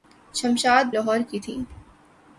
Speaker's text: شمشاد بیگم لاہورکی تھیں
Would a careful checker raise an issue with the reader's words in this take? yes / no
yes